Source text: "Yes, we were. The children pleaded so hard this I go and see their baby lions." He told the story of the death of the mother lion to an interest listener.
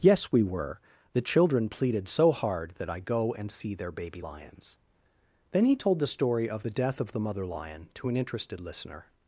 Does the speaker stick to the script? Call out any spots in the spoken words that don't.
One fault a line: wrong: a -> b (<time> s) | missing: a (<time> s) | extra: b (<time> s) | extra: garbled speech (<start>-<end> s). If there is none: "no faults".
wrong: this -> that (2.8 s)
extra: Then (5.5 s)
wrong: interest -> interested (8.2 s)